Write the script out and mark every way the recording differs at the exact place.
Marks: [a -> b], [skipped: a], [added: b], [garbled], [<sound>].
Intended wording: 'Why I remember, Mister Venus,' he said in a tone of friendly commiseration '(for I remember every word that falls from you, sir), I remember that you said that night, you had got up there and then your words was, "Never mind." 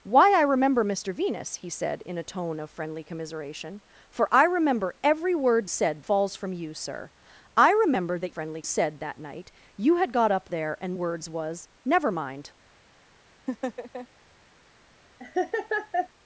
'Why I remember, Mister Venus,' he said in a tone of friendly commiseration '(for I remember every word [that -> said] falls from you, sir), I remember that [you -> friendly] said that night, you had got up there and [skipped: then your] words was, "Never mind." [laugh] [laugh]